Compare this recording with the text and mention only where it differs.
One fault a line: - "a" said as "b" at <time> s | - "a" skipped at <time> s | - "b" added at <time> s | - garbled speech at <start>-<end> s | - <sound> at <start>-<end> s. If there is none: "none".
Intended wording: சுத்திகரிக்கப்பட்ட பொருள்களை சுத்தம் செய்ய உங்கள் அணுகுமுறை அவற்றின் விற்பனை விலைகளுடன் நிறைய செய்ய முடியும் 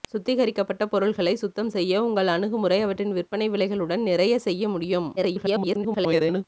- garbled speech at 5.2-6.4 s